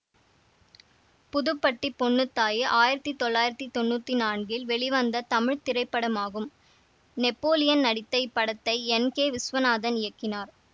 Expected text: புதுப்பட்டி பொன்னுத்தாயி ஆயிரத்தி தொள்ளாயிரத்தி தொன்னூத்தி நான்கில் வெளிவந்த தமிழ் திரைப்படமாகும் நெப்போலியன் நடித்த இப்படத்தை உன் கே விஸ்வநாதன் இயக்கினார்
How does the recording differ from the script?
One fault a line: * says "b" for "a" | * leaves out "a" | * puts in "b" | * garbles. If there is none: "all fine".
* says "என்" for "உன்"